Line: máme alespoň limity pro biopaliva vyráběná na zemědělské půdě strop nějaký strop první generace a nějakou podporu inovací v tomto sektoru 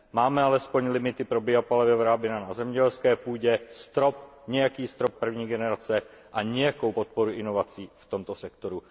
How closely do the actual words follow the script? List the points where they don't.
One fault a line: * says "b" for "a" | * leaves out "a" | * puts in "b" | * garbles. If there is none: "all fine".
all fine